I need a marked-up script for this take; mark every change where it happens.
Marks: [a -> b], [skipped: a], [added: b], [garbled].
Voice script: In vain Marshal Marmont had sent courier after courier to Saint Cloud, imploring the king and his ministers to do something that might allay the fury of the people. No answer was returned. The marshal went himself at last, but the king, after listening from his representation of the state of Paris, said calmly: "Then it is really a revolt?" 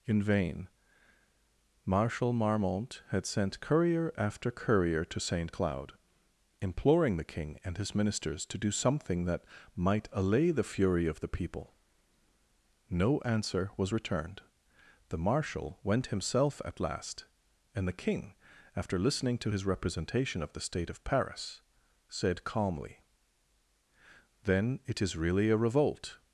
In vain Marshal Marmont had sent courier after courier to Saint Cloud, imploring the king and his ministers to do something that might allay the fury of the people. No answer was returned. The marshal went himself at last, [but -> and] the king, after listening [from -> to] his representation of the state of Paris, said calmly: "Then it is really a revolt?"